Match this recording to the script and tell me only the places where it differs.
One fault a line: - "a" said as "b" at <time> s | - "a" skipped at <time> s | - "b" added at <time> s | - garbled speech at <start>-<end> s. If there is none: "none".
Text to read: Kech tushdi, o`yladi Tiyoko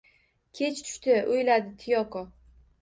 none